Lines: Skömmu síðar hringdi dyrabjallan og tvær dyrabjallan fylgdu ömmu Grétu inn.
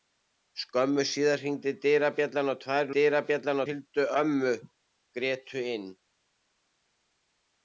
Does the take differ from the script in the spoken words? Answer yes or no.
no